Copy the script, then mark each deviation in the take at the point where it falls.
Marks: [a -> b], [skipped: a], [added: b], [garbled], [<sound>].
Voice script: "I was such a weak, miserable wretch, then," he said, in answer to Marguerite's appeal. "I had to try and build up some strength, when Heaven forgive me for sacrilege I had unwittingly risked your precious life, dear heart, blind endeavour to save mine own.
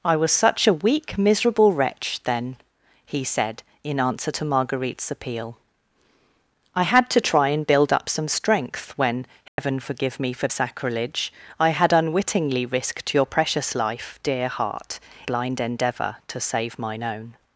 "I was such a weak, miserable wretch, then," he said, in answer to Marguerite's appeal. "I had to try and build up some strength, when Heaven [dropout] forgive me for sacrilege I had unwittingly risked your precious life, dear heart, blind endeavour to save mine own.